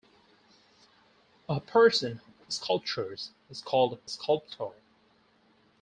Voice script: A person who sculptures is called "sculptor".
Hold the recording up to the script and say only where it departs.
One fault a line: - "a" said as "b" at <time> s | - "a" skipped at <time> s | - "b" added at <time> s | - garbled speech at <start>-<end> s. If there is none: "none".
none